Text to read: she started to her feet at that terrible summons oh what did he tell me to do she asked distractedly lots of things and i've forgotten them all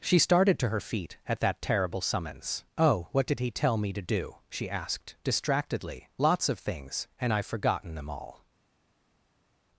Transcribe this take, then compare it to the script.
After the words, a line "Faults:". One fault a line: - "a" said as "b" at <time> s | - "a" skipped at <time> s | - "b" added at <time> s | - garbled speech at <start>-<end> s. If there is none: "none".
she started to her feet at that terrible summons oh what did he tell me to do she asked distractedly lots of things and i've forgotten them all
Faults:
none